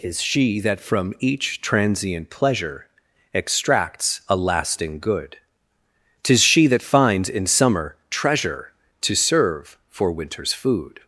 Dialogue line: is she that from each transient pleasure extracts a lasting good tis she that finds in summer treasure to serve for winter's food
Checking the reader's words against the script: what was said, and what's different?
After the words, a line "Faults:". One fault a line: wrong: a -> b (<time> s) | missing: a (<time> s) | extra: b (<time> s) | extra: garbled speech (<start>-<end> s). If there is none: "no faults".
is she that from each transient pleasure extracts a lasting good tis she that finds in summer treasure to serve for winter's food
Faults:
no faults